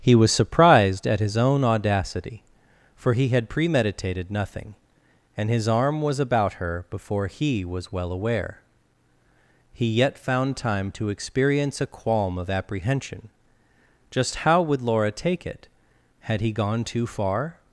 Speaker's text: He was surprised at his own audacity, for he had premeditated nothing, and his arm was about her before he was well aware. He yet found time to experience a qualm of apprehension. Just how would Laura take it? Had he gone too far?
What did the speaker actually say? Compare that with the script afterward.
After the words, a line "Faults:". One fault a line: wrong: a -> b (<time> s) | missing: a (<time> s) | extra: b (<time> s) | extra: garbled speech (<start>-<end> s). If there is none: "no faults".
He was surprised at his own audacity, for he had premeditated nothing, and his arm was about her before he was well aware. He yet found time to experience a qualm of apprehension. Just how would Laura take it? Had he gone too far?
Faults:
no faults